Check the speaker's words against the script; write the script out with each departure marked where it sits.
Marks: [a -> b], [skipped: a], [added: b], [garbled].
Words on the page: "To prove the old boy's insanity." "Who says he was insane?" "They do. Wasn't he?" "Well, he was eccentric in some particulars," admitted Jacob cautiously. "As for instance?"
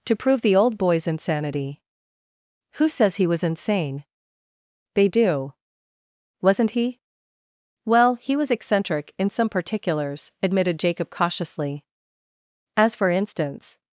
"To prove the old boy's insanity." "Who says he was insane?" "They do. Wasn't he?" "Well, he was eccentric in some particulars," admitted Jacob cautiously. "As for instance?"